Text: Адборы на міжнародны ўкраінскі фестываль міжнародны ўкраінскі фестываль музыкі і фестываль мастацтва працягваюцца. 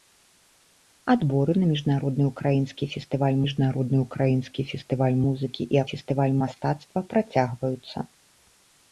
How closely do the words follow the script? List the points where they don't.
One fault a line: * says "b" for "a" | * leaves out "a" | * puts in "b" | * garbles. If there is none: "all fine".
all fine